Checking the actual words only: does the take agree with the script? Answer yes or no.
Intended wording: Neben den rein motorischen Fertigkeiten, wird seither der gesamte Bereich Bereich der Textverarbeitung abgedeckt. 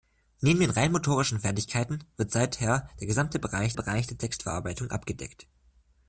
yes